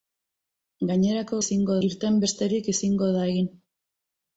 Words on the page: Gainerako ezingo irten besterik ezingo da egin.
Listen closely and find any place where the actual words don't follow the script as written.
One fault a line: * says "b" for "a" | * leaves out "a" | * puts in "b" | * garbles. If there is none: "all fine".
all fine